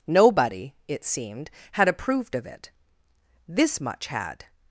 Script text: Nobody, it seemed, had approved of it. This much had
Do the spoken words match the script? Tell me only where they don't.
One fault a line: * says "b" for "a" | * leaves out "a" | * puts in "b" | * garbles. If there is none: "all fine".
all fine